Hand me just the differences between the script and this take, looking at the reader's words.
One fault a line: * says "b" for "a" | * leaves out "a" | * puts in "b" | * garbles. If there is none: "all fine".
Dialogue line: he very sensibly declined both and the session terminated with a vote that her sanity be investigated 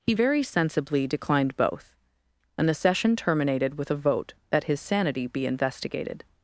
* says "his" for "her"